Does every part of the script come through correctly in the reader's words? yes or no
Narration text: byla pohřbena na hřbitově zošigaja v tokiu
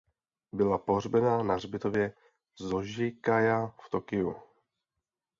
yes